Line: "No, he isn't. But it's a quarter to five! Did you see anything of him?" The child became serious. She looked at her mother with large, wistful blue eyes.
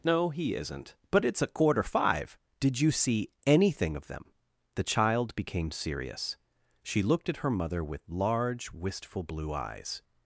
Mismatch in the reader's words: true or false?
true